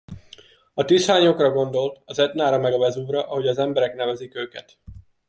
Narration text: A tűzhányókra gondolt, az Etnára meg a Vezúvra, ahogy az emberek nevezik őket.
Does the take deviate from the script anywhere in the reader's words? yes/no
no